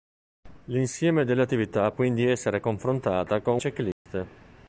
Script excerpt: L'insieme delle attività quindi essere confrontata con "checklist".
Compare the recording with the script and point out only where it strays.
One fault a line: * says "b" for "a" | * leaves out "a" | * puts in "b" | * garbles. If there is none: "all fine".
all fine